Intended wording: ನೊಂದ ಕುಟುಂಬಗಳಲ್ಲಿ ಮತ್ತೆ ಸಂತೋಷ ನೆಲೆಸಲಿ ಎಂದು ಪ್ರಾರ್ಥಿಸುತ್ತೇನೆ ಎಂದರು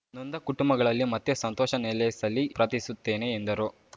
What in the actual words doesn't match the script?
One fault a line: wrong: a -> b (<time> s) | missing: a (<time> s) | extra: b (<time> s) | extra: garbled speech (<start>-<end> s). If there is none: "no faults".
missing: ಎಂದು (2.5 s)